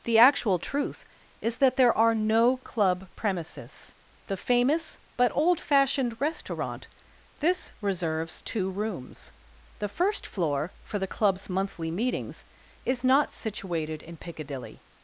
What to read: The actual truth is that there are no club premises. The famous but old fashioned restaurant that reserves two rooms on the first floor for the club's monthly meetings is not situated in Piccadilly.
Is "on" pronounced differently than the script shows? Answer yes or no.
yes